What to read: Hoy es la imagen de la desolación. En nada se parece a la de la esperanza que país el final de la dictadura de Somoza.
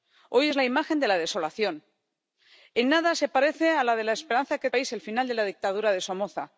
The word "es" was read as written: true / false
true